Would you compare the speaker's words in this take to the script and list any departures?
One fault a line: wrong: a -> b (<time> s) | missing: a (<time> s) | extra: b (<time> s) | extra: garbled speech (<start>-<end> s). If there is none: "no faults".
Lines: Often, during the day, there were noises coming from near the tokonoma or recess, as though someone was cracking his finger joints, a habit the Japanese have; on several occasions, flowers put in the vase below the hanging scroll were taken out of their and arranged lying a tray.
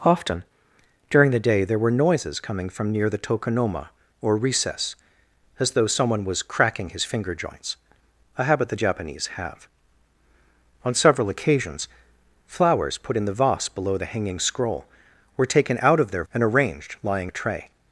no faults